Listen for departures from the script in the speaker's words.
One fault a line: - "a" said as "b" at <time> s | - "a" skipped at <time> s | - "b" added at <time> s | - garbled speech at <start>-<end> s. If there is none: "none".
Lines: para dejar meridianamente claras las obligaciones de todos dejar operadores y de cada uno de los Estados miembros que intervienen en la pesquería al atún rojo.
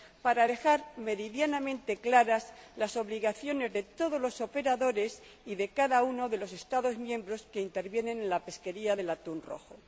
- "dejar" said as "los" at 4.2 s
- "al" said as "del" at 8.9 s